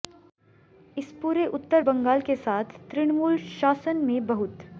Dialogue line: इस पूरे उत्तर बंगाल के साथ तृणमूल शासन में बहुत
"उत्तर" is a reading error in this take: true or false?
false